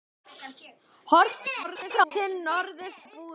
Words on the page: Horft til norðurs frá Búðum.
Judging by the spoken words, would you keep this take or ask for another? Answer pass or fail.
fail